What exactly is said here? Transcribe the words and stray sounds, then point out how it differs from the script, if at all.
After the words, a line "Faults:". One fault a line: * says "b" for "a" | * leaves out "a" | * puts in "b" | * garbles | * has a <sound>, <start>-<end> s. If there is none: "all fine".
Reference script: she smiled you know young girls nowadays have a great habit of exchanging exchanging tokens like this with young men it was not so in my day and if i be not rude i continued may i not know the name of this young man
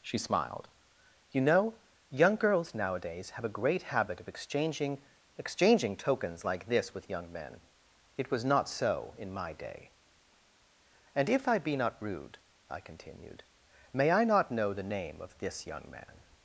she smiled you know young girls nowadays have a great habit of exchanging exchanging tokens like this with young men it was not so in my day and if i be not rude i continued may i not know the name of this young man
Faults:
all fine